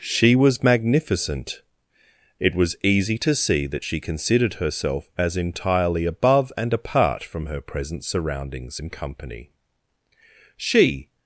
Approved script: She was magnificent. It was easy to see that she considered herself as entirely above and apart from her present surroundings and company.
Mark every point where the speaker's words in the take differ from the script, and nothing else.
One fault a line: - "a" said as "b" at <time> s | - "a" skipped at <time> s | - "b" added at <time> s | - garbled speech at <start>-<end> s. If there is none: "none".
- "She" added at 10.5 s